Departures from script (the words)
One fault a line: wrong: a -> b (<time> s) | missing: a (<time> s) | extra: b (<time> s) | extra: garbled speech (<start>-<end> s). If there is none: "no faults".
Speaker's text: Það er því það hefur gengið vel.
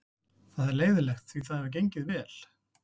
extra: leiðinlegt (0.8 s)